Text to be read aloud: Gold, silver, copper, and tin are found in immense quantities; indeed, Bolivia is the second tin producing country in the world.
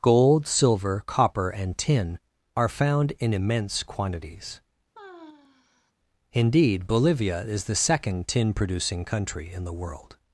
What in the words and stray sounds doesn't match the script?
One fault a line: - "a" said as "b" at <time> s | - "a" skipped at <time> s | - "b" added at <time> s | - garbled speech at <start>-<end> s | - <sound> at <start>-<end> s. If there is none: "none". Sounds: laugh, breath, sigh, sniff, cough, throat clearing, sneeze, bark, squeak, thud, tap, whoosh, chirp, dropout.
- sigh at 4.9-5.9 s